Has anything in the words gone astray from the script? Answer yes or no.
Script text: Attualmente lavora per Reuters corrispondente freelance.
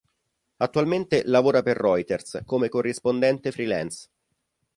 yes